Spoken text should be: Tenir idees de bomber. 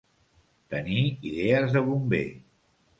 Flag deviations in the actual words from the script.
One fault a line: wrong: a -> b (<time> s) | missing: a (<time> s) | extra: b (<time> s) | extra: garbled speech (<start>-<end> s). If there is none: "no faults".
no faults